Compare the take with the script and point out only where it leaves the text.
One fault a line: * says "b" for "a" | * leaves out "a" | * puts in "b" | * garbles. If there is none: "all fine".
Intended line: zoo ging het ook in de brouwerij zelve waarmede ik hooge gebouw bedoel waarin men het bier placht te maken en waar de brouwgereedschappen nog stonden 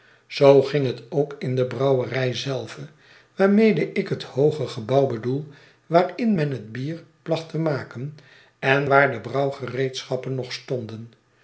* puts in "het"